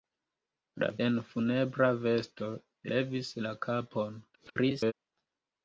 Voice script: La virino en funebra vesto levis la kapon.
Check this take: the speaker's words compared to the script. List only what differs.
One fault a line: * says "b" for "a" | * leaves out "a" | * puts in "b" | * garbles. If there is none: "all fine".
* leaves out "virino"
* garbles